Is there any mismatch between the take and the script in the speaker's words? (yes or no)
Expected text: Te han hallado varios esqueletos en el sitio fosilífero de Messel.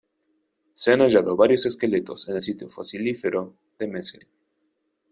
yes